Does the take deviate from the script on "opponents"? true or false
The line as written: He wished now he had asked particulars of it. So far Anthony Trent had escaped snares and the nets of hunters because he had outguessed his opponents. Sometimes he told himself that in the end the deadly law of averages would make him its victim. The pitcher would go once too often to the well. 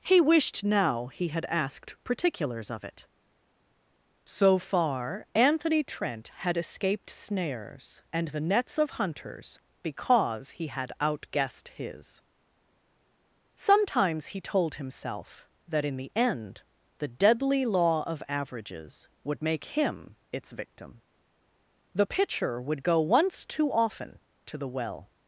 true